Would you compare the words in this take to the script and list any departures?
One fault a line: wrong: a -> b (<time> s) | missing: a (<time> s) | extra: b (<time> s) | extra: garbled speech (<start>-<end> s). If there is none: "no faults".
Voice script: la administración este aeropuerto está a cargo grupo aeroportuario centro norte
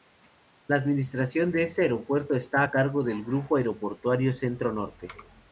extra: de (1.5 s)
extra: del (3.0 s)